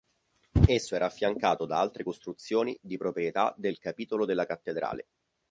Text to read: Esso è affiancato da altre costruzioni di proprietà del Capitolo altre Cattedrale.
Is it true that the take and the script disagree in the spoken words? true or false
true